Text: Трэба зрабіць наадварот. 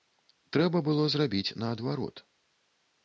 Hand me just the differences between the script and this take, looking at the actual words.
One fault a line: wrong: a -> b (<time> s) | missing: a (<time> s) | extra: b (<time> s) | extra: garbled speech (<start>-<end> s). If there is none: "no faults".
extra: было (0.9 s)